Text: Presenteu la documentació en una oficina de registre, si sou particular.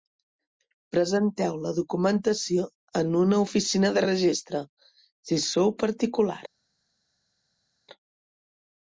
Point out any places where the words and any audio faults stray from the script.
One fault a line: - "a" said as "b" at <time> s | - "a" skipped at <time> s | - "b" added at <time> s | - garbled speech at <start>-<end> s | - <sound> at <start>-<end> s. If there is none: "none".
none